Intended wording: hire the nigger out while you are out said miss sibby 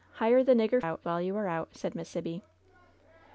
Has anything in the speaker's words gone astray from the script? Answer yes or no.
no